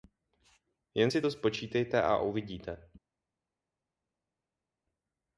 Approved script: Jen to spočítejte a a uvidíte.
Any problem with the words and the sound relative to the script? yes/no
yes